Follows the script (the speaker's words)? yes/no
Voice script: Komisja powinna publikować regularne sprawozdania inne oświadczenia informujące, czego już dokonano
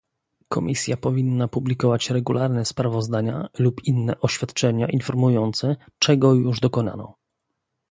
no